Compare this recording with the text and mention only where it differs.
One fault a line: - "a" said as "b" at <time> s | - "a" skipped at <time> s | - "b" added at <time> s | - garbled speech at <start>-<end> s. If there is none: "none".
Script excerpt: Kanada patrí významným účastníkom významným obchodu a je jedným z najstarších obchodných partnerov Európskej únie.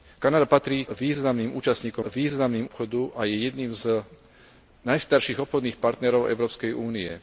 none